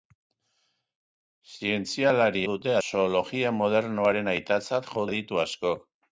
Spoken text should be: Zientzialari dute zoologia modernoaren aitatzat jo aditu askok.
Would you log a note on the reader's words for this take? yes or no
no